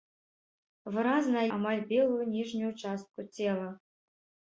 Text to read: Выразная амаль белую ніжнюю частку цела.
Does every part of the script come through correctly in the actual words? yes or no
yes